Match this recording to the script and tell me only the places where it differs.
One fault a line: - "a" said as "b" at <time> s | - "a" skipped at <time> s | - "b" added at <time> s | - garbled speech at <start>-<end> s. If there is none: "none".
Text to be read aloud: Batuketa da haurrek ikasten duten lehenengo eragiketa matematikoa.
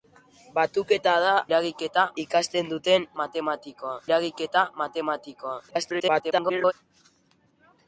- "haurrek" said as "eragiketa" at 1.5 s
- "lehenengo" said as "matematikoa" at 3.2 s
- garbled speech at 5.7-6.7 s